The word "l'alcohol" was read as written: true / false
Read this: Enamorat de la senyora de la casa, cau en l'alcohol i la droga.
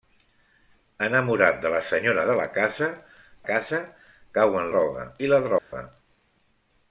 false